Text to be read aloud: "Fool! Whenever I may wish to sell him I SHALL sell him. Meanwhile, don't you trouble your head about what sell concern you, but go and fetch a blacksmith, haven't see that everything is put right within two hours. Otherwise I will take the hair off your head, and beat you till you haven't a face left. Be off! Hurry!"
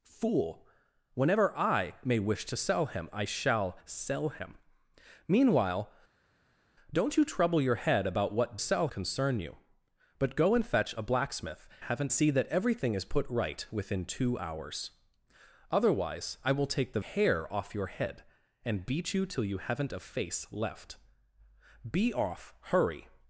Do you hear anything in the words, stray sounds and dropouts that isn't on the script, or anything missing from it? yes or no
no